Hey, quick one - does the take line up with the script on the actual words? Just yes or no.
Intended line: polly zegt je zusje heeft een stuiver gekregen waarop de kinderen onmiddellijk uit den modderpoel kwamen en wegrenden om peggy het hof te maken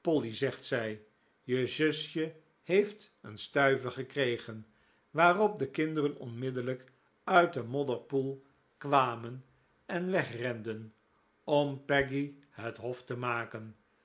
no